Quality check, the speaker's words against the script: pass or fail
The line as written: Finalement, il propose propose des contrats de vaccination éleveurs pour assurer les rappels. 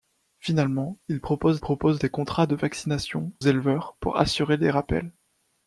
pass